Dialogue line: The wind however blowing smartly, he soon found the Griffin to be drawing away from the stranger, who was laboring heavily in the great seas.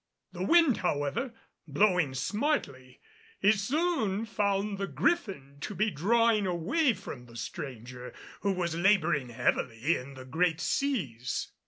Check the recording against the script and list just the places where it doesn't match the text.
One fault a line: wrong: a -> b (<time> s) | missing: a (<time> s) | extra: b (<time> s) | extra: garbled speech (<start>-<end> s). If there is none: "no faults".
no faults